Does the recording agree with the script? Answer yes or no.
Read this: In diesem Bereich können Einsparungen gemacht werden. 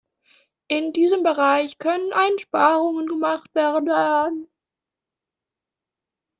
yes